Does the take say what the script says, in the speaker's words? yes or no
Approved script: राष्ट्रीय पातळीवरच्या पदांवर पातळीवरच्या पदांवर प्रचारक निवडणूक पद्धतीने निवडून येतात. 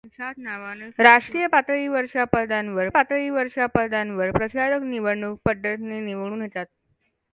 yes